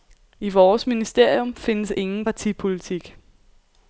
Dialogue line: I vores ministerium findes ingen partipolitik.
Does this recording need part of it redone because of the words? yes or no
no